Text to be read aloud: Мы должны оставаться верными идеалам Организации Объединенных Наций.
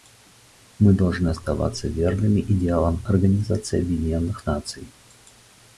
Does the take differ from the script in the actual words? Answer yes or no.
no